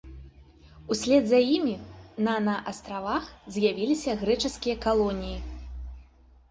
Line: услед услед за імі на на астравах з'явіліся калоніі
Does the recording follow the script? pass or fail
fail